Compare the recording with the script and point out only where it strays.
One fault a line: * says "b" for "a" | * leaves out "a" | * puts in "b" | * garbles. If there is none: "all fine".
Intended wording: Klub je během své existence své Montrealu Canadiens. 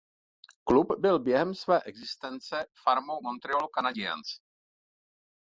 * says "byl" for "je"
* says "farmou" for "své"